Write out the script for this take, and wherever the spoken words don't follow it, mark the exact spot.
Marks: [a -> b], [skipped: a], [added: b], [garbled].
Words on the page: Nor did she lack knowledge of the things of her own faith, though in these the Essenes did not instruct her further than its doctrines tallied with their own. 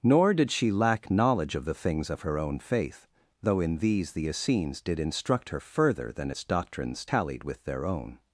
Nor did she lack knowledge of the things of her own faith, though in these the Essenes did [skipped: not] instruct her further than its doctrines tallied with their own.